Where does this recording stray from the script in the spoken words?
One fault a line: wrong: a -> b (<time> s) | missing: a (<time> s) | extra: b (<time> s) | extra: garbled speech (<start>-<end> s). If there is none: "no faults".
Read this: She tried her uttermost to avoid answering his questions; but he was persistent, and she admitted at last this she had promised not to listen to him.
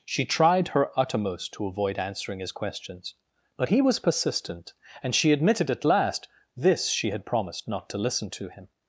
no faults